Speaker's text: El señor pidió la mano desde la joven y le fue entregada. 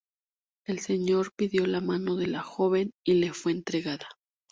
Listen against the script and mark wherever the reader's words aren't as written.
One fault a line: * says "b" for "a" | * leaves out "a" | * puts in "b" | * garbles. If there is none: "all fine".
* says "de" for "desde"